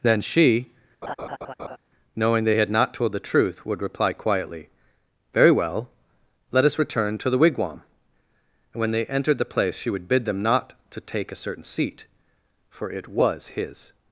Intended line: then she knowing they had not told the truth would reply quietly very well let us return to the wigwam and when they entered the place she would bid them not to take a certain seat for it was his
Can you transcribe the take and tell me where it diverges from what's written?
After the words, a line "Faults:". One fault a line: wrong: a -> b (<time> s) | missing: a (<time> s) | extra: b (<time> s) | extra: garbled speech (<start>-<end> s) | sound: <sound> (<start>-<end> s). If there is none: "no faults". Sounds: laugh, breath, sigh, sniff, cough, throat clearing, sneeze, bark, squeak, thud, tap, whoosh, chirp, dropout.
then she knowing they had not told the truth would reply quietly very well let us return to the wigwam and when they entered the place she would bid them not to take a certain seat for it was his
Faults:
sound: laugh (1.0-1.8 s)